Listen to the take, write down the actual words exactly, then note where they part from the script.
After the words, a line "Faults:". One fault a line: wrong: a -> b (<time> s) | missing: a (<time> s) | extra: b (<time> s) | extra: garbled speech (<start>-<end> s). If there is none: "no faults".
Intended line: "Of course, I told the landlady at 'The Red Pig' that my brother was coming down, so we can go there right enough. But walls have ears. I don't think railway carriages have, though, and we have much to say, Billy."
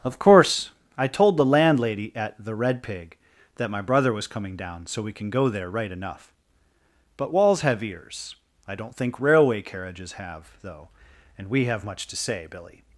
"Of course, I told the landlady at 'The Red Pig' that my brother was coming down, so we can go there right enough. But walls have ears. I don't think railway carriages have, though, and we have much to say, Billy."
Faults:
no faults